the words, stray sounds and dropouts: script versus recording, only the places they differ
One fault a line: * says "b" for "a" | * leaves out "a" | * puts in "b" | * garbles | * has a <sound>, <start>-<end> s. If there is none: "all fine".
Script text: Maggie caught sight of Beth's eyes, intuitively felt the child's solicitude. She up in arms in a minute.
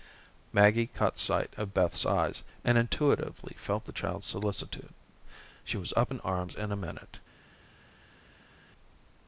* puts in "and"
* puts in "was"